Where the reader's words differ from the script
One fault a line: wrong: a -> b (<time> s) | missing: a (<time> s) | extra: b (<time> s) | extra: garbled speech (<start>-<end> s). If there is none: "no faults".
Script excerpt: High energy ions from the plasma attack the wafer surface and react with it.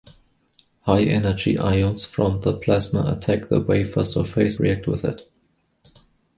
missing: and (4.6 s)